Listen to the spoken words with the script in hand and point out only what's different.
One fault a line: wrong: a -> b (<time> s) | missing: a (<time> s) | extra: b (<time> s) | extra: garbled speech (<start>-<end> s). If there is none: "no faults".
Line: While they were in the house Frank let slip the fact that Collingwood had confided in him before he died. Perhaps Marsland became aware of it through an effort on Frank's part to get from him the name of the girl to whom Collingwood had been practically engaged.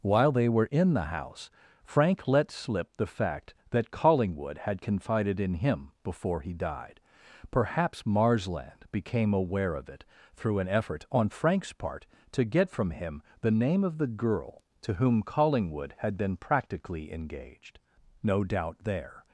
extra: No doubt there (18.2 s)